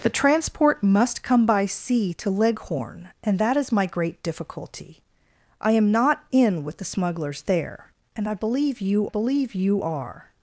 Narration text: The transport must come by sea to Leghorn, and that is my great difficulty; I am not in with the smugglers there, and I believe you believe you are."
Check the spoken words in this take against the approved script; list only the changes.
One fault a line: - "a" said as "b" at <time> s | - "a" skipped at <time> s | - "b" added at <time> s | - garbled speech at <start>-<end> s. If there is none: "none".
none